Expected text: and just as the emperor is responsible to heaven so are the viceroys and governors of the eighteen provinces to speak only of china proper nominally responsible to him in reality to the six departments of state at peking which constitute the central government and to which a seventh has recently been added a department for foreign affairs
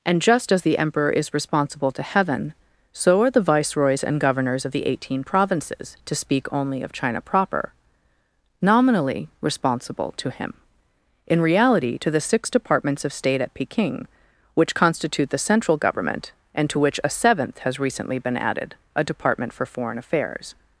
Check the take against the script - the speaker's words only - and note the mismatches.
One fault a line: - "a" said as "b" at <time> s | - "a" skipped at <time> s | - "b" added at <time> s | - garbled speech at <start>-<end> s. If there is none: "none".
none